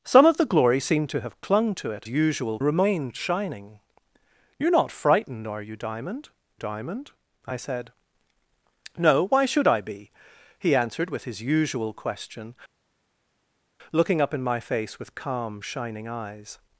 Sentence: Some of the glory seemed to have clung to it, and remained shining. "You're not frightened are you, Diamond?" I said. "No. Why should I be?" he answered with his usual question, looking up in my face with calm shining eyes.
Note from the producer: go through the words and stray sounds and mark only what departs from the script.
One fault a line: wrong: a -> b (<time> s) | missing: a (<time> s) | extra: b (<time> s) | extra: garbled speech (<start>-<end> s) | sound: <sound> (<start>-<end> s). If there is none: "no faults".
wrong: and -> usual (2.1 s)
extra: Diamond (6.5 s)